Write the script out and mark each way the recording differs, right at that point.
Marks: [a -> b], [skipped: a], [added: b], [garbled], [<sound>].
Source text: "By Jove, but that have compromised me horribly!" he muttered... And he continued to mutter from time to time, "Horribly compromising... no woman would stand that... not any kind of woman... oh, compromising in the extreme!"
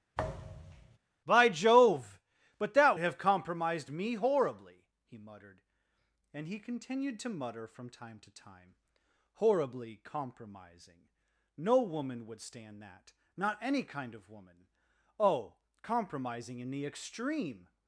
[thud] "By Jove, but that have compromised me horribly!" he muttered... And he continued to mutter from time to time, "Horribly compromising... no woman would stand that... not any kind of woman... oh, compromising in the extreme!"